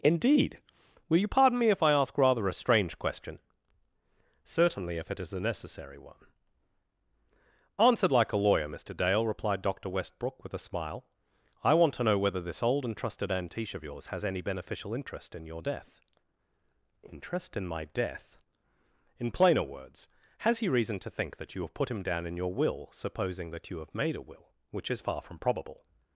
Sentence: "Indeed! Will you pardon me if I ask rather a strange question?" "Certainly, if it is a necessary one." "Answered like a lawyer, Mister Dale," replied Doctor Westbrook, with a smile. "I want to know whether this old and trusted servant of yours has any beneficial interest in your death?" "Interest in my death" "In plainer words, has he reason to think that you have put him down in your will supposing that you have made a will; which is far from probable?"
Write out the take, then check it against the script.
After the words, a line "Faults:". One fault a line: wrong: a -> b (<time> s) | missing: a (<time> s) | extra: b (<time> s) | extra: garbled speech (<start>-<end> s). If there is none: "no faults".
"Indeed! Will you pardon me if I ask rather a strange question?" "Certainly, if it is a necessary one." "Answered like a lawyer, Mister Dale," replied Doctor Westbrook, with a smile. "I want to know whether this old and trusted antiche of yours has any beneficial interest in your death?" "Interest in my death" "In plainer words, has he reason to think that you have put him down in your will supposing that you have made a will; which is far from probable?"
Faults:
wrong: servant -> antiche (13.3 s)